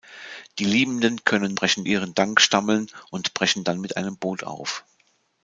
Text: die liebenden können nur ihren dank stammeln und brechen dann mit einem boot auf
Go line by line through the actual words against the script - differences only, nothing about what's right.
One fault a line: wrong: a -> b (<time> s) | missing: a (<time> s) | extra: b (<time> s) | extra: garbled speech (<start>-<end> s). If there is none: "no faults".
wrong: nur -> brechen (1.5 s)